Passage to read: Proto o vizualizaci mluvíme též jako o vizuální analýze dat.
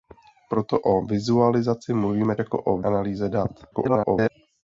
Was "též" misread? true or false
true